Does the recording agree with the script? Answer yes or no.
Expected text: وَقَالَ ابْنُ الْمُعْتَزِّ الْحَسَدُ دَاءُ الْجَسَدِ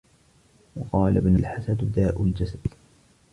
no